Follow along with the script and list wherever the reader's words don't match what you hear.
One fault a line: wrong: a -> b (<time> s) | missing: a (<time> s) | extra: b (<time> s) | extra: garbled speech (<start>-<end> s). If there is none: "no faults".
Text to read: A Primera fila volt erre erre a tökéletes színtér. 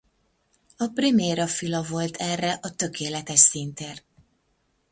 missing: erre (2.6 s)